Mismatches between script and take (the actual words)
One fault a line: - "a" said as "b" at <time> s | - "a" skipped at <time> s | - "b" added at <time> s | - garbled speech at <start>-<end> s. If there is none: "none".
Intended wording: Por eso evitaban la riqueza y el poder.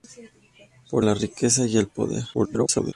- "eso evitaban" skipped at 1.1 s
- garbled speech at 2.3-2.9 s